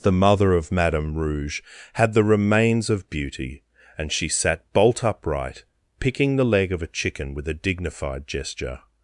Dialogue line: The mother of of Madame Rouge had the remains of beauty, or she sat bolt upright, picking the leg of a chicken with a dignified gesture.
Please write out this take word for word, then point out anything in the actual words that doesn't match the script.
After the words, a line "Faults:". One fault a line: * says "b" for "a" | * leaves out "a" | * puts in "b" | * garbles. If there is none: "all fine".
The mother of Madame Rouge had the remains of beauty, and she sat bolt upright, picking the leg of a chicken with a dignified gesture.
Faults:
* leaves out "of"
* says "and" for "or"